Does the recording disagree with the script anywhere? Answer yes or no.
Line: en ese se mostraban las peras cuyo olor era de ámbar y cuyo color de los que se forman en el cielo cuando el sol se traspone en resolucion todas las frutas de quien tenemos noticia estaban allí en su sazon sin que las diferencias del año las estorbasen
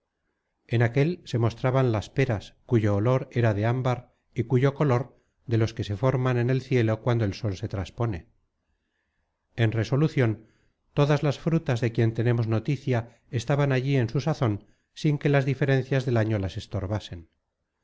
yes